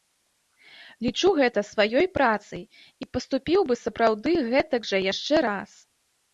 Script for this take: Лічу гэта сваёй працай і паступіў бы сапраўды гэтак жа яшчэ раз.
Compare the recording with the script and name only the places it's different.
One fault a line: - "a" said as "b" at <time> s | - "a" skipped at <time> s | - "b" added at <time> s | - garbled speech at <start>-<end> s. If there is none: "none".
none